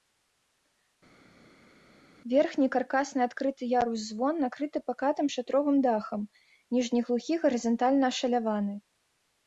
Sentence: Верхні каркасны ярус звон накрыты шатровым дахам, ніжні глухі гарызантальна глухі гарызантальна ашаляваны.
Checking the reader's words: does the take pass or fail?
fail